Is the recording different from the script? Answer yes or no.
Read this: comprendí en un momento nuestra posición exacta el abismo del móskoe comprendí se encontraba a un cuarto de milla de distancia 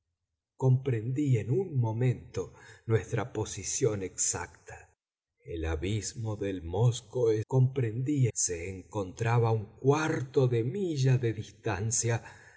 no